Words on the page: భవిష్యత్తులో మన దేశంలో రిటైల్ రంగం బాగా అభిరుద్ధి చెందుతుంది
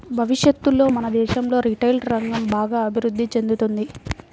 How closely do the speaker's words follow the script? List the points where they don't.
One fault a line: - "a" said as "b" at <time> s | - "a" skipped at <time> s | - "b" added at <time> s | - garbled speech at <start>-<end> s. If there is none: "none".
none